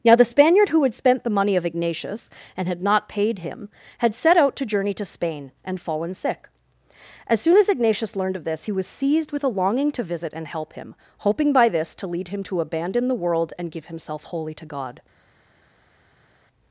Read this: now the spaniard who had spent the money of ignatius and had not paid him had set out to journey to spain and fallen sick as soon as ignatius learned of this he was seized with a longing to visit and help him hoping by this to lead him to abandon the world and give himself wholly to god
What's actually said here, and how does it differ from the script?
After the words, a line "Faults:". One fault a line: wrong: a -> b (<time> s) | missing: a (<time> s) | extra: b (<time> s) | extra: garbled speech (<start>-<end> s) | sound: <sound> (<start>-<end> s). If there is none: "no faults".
now the spaniard who had spent the money of ignatius and had not paid him had set out to journey to spain and fallen sick as soon as ignatius learned of this he was seized with a longing to visit and help him hoping by this to lead him to abandon the world and give himself wholly to god
Faults:
no faults